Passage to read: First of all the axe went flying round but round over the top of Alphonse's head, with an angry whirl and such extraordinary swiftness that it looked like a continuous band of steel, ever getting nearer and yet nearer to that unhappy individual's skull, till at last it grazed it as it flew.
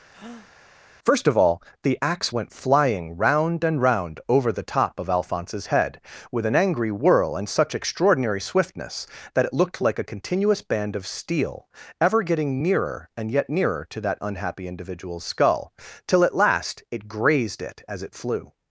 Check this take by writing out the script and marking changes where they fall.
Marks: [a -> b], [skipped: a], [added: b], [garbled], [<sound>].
[breath] First of all the axe went flying round [but -> and] round over the top of Alphonse's head, with an angry whirl and such extraordinary swiftness that it looked like a continuous band of steel, ever getting nearer and yet nearer to that unhappy individual's skull, till at last it grazed it as it flew.